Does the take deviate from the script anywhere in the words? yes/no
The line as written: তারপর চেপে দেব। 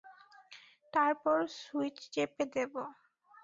yes